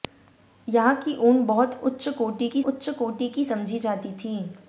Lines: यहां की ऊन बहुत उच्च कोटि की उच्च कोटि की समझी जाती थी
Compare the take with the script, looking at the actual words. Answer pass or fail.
pass